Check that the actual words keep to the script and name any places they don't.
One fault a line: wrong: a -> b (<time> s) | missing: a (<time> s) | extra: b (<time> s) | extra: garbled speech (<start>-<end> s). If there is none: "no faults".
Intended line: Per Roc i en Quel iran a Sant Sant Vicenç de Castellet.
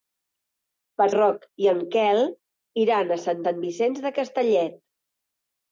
no faults